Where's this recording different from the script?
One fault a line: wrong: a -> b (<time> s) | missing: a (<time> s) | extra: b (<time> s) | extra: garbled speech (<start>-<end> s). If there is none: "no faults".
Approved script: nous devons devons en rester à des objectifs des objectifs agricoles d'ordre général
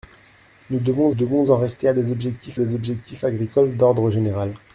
no faults